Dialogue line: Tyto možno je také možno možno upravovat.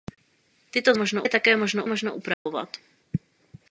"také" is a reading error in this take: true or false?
false